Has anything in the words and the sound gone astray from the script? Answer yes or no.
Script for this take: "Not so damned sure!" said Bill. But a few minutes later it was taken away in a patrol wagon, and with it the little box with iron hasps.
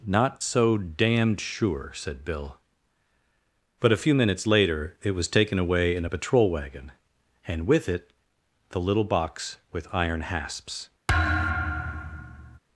yes